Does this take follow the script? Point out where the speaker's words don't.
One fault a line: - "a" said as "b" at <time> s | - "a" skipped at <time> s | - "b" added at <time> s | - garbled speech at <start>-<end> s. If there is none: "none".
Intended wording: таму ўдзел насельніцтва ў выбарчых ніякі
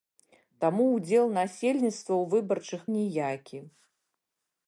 none